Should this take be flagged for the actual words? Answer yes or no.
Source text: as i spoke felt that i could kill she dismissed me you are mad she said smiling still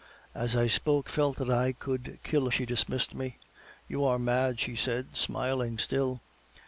no